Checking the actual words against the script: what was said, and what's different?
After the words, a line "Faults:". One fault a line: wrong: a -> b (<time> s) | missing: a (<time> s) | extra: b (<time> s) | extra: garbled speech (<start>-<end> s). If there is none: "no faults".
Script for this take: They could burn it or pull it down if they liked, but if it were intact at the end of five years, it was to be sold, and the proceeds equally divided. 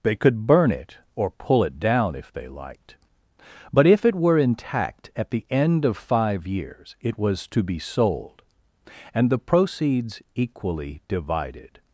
They could burn it or pull it down if they liked, but if it were intact at the end of five years, it was to be sold, and the proceeds equally divided.
Faults:
no faults